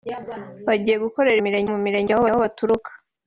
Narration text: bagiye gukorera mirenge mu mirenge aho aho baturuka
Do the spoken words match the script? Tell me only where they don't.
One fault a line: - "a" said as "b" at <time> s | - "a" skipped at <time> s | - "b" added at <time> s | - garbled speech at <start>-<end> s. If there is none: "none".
none